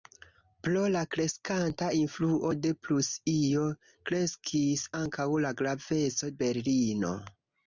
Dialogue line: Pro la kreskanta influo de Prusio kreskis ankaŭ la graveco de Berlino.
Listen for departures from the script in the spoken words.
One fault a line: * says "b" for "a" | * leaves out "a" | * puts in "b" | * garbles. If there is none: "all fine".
* leaves out "de"